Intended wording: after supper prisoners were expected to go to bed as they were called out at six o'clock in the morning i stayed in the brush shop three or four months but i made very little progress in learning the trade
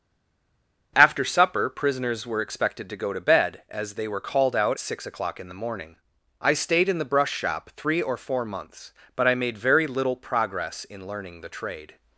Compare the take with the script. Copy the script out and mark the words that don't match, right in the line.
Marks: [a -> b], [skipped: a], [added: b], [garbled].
after supper prisoners were expected to go to bed as they were called out [skipped: at] six o'clock in the morning i stayed in the brush shop three or four months but i made very little progress in learning the trade